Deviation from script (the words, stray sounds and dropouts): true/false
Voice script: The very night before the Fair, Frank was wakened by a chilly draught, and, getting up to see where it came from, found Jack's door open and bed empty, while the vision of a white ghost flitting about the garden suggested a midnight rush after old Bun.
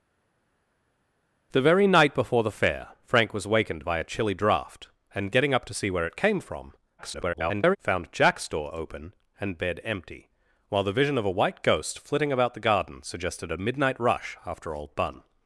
true